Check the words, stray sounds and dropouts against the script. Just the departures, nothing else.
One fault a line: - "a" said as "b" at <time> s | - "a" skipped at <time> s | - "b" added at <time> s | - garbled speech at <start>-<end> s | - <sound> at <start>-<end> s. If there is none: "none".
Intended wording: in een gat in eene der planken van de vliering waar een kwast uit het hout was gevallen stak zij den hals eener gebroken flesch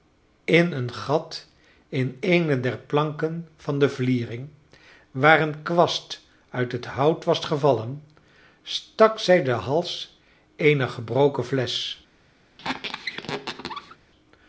- squeak at 12.6-14.0 s